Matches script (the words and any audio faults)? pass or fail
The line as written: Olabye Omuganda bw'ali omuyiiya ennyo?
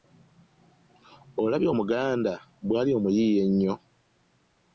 pass